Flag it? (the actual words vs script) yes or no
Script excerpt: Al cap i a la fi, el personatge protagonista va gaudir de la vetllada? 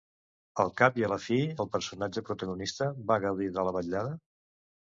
no